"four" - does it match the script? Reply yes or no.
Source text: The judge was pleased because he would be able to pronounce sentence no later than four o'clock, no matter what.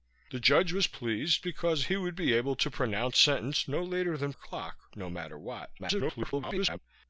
no